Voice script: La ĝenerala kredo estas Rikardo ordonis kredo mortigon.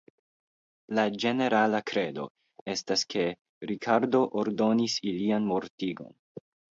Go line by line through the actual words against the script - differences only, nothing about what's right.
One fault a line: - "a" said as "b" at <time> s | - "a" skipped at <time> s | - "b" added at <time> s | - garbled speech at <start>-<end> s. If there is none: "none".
- "ke" added at 3.1 s
- "kredo" said as "ilian" at 5.1 s